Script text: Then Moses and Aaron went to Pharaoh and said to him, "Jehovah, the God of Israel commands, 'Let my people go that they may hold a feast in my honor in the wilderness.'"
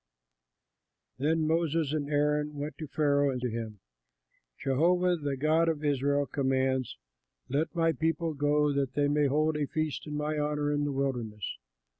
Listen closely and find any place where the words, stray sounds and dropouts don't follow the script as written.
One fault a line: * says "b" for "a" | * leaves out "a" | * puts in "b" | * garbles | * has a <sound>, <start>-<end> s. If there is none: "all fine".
* leaves out "said"